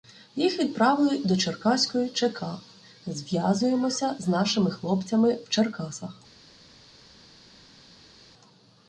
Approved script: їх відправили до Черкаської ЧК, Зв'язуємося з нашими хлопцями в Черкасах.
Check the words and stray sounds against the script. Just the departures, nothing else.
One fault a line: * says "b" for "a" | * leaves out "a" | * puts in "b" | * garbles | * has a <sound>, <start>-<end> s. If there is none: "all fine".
all fine